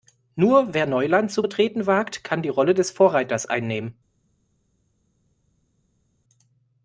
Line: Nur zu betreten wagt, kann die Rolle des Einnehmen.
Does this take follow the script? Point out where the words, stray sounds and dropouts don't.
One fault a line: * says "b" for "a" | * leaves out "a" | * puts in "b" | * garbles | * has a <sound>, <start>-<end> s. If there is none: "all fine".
* puts in "wer Neuland"
* puts in "Vorreiters"